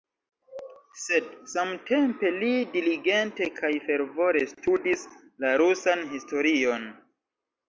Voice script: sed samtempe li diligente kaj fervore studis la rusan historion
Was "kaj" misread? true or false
false